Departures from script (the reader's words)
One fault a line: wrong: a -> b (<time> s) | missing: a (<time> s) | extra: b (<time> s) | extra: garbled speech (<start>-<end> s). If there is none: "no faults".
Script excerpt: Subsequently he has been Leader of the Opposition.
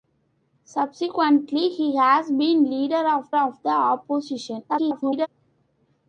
extra: of (3.4 s)
extra: garbled speech (4.7-5.3 s)